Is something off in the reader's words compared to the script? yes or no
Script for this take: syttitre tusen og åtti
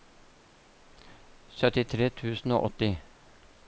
no